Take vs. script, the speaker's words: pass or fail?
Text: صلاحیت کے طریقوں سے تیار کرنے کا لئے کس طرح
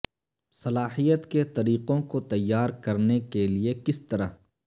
fail